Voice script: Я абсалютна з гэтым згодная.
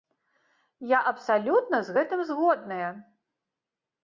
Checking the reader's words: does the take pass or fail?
pass